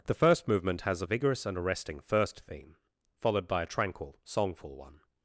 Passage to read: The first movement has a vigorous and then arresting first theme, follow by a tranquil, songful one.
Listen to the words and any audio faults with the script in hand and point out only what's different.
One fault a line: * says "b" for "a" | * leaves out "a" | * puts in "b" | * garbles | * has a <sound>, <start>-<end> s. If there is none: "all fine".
* leaves out "then"
* says "followed" for "follow"